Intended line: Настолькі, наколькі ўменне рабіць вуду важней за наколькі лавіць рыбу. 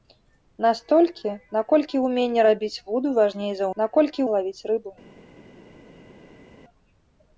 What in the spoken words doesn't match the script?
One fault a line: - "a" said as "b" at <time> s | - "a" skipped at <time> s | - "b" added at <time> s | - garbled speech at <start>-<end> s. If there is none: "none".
none